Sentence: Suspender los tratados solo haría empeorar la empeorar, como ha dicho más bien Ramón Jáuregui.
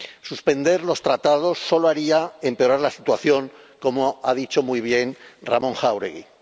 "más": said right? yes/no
no